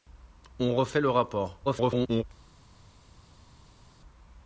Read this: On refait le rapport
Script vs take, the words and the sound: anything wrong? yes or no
yes